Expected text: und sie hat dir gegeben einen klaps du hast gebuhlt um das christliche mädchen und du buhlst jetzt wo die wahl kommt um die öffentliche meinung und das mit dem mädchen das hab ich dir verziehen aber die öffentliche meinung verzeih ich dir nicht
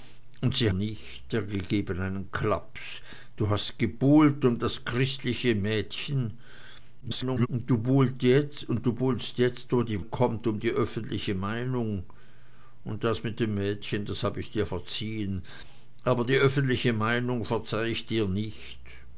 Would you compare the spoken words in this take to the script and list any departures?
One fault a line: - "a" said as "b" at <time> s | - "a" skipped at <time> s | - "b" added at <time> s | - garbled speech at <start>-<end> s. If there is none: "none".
- "hat" said as "nicht" at 0.7 s
- garbled speech at 7.0-7.5 s
- "wahl" skipped at 10.0 s